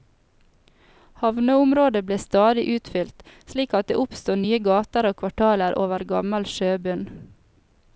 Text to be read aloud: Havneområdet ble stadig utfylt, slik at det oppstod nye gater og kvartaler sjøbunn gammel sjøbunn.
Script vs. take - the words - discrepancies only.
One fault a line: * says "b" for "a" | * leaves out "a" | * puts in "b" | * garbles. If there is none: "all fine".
* says "over" for "sjøbunn"